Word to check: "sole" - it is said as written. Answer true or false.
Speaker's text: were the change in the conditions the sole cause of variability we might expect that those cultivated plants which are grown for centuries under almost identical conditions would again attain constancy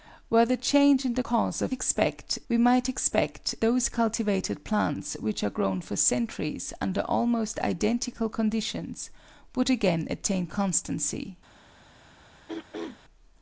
false